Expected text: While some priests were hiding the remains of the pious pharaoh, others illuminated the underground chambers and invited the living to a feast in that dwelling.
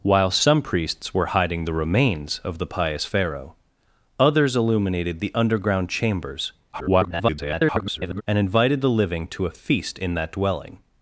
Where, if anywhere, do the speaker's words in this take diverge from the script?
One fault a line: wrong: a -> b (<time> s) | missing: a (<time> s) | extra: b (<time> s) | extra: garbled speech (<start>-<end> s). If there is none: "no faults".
extra: garbled speech (6.7-8.2 s)